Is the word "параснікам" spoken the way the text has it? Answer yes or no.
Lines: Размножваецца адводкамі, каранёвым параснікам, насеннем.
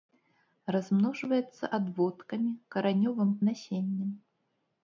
no